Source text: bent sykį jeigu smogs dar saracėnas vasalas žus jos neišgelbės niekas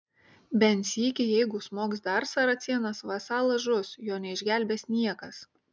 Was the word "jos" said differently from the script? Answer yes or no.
yes